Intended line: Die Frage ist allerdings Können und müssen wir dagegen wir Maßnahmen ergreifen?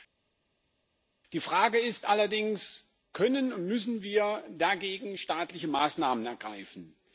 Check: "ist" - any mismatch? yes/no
no